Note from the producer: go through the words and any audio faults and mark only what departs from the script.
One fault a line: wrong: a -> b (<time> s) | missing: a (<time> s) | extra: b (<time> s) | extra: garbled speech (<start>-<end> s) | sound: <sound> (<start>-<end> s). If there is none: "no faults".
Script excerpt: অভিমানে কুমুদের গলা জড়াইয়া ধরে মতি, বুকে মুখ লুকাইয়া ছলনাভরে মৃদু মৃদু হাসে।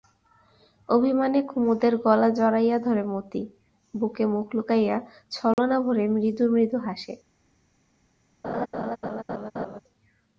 sound: dropout (5.5-5.6 s)
sound: laugh (8.4-9.8 s)